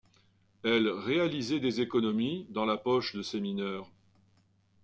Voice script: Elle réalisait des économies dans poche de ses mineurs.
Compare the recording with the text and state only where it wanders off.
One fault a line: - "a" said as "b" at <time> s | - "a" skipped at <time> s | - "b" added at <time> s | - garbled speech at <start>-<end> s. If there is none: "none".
- "la" added at 2.6 s